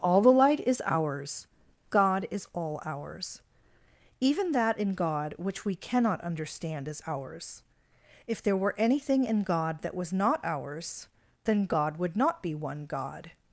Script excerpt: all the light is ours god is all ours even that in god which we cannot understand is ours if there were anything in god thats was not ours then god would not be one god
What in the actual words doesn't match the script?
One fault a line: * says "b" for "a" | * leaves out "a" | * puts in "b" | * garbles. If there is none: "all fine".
* says "that" for "thats"